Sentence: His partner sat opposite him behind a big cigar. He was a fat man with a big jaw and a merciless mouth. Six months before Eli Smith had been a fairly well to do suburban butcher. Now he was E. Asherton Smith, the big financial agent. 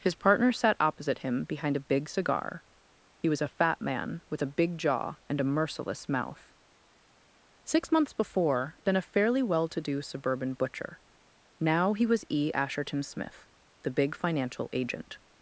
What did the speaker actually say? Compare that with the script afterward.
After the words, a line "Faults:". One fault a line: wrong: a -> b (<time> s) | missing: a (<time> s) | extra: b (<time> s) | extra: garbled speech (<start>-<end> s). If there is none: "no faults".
His partner sat opposite him behind a big cigar. He was a fat man with a big jaw and a merciless mouth. Six months before Been a fairly well to do suburban butcher. Now he was E. Asherton Smith, the big financial agent.
Faults:
missing: Eli Smith had (8.8 s)